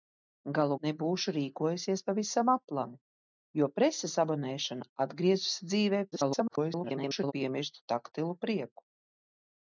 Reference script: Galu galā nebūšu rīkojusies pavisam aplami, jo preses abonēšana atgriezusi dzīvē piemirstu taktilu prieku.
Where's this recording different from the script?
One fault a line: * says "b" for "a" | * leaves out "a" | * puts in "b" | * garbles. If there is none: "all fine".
* leaves out "galā"
* garbles